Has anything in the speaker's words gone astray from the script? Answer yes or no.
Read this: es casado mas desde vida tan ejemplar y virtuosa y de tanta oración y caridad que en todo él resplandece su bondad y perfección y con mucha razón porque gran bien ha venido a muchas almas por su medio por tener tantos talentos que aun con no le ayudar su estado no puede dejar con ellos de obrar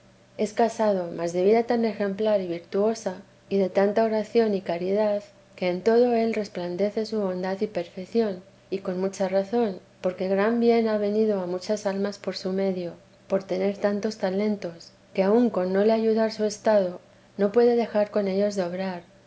yes